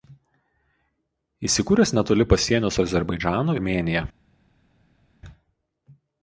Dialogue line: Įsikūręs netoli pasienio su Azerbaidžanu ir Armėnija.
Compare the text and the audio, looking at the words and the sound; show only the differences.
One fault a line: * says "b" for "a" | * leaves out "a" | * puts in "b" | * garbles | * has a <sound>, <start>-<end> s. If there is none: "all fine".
* leaves out "ir"